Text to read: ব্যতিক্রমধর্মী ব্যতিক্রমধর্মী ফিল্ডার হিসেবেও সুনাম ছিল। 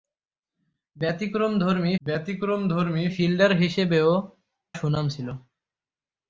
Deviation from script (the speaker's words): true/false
false